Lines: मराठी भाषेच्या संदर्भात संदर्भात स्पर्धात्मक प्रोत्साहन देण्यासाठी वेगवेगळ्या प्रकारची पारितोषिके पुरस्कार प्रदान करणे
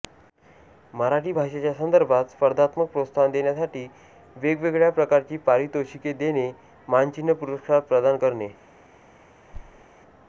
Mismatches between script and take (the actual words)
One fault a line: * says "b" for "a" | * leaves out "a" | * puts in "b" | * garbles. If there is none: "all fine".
* leaves out "संदर्भात"
* puts in "देणे मानचिन्ह"